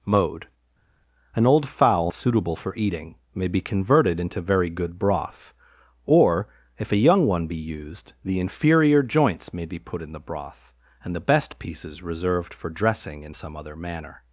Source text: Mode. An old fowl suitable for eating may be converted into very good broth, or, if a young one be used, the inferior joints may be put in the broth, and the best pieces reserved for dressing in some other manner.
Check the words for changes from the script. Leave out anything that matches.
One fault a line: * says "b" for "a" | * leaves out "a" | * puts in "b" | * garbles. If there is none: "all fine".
all fine